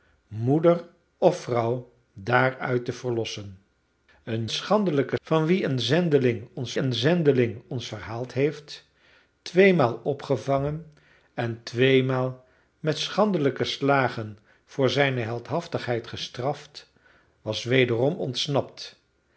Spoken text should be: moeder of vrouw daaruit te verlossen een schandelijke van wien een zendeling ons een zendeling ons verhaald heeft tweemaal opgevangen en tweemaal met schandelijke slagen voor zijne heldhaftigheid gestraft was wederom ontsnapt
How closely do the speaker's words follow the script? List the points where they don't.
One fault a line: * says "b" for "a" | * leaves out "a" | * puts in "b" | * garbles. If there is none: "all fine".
all fine